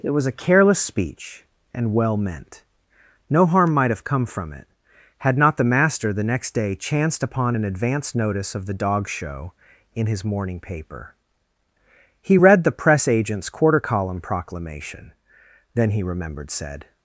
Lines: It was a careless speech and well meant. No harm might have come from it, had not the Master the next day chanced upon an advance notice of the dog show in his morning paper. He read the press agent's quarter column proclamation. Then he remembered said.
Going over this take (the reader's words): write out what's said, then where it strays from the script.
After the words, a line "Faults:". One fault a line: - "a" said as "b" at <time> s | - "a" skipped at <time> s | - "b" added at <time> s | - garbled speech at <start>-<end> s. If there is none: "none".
It was a careless speech and well meant. No harm might have come from it, had not the Master the next day chanced upon an advance notice of the dog show in his morning paper. He read the press agent's quarter column proclamation. Then he remembered said.
Faults:
none